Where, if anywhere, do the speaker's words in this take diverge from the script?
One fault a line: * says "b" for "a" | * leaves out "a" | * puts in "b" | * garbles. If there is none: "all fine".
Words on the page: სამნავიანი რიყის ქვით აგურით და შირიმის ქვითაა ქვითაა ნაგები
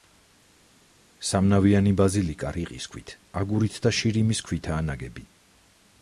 * puts in "ბაზილიკა"
* leaves out "ქვითაა"